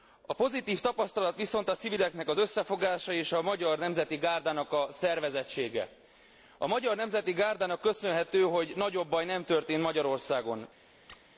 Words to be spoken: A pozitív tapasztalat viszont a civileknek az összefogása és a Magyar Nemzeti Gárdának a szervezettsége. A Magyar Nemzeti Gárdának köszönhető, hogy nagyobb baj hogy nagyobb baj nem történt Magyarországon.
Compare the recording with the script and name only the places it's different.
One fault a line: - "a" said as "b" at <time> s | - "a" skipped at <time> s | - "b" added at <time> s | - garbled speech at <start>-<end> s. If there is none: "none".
- "hogy nagyobb baj" skipped at 9.2 s